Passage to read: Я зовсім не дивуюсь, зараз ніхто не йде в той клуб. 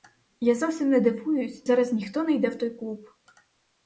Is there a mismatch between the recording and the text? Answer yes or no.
no